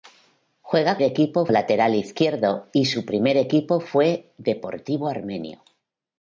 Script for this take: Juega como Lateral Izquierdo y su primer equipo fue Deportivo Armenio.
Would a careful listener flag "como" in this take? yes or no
yes